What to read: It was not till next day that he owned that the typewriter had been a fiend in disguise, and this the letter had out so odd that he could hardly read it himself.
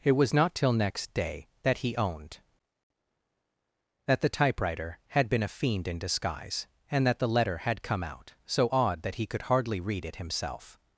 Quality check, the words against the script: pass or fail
fail